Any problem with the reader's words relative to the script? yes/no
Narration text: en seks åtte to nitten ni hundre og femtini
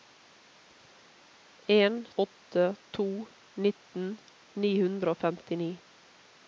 yes